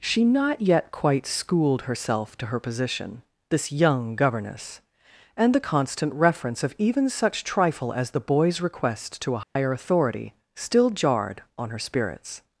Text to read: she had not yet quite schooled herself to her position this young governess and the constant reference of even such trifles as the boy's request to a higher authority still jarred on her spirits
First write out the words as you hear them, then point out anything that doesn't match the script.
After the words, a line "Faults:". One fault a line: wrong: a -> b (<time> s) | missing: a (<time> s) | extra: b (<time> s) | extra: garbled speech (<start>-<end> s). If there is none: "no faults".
she not yet quite schooled herself to her position this young governess and the constant reference of even such trifle as the boy's request to a higher authority still jarred on her spirits
Faults:
missing: had (0.2 s)
wrong: trifles -> trifle (7.4 s)